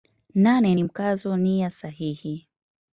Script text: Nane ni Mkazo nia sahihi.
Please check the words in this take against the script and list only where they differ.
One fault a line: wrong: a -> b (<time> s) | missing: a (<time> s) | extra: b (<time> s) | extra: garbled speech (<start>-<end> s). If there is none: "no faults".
no faults